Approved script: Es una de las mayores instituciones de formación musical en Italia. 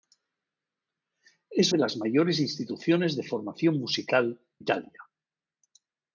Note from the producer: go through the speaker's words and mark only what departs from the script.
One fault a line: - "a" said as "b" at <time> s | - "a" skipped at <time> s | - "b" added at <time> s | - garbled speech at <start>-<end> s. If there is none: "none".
- "una" skipped at 1.7 s
- "en" skipped at 4.4 s